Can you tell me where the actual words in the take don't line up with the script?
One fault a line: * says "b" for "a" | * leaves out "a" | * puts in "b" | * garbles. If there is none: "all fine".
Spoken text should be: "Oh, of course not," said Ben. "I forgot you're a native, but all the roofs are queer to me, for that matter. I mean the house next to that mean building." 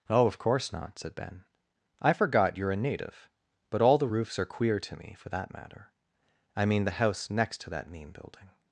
all fine